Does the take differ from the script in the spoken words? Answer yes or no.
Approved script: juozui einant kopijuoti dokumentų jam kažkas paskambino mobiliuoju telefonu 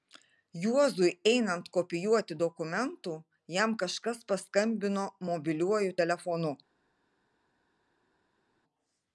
no